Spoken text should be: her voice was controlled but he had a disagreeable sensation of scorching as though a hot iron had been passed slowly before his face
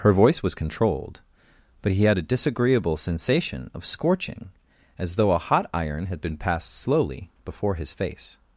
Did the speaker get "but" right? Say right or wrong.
right